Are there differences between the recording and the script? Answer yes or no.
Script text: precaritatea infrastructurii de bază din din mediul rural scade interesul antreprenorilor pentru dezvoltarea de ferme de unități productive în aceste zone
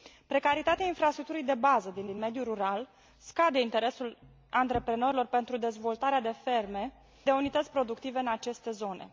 no